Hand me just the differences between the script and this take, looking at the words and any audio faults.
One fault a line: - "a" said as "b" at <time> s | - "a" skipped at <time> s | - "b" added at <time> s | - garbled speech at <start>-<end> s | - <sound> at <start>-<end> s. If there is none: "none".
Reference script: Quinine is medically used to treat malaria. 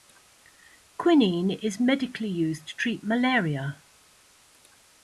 none